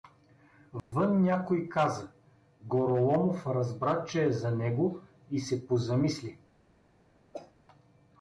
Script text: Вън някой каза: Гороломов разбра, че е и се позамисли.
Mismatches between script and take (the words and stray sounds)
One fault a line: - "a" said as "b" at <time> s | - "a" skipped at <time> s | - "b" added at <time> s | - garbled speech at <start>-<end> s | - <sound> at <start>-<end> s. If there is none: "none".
- dropout at 0.8-0.9 s
- "за него" added at 4.3 s
- cough at 7.3-7.5 s